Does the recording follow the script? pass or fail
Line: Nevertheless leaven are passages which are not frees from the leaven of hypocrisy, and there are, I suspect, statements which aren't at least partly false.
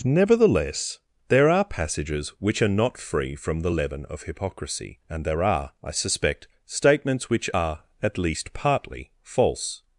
fail